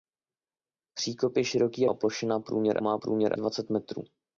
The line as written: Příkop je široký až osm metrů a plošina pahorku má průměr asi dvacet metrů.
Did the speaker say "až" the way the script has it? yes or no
no